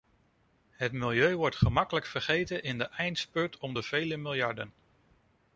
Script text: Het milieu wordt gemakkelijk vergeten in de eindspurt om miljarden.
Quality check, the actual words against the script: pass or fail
fail